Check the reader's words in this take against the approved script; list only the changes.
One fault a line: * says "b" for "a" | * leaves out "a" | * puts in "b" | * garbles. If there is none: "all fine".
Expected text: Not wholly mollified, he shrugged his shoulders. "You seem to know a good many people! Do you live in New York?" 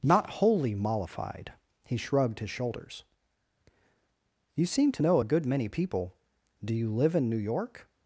all fine